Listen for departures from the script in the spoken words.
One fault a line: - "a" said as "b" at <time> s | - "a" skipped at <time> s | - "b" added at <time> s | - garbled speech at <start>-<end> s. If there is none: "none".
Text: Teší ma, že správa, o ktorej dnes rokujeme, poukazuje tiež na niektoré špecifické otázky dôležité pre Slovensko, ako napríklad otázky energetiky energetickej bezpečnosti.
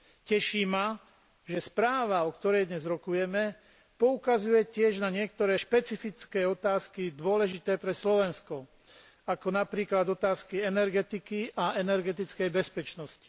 - "a" added at 11.5 s